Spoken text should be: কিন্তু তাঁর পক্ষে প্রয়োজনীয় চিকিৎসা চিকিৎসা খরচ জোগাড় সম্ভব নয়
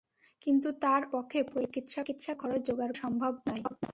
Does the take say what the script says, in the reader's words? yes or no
yes